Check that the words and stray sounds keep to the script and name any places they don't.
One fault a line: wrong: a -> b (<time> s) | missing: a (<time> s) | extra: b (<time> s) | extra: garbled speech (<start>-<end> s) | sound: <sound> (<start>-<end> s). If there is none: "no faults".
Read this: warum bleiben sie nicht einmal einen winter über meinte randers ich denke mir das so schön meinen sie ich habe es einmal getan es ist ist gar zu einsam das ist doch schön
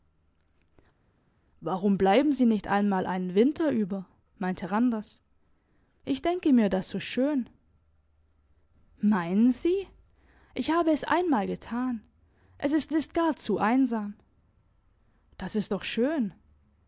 no faults